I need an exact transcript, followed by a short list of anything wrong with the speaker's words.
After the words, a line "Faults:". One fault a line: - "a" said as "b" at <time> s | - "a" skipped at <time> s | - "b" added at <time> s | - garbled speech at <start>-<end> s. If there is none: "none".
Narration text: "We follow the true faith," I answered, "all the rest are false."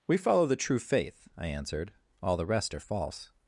"We follow the true faith," I answered, "all the rest are false."
Faults:
none